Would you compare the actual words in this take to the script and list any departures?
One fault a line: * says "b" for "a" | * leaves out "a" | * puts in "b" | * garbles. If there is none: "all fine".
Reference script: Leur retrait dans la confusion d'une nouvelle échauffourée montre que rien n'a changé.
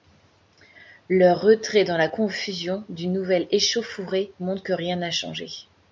all fine